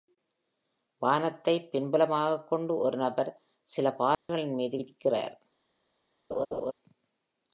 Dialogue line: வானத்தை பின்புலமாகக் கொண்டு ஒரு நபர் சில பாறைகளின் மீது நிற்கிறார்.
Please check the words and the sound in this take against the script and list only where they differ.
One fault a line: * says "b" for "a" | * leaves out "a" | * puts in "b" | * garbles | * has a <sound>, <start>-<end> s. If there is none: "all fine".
* has a dropout, 4.1-4.3 s
* has a laugh, 6.3-6.7 s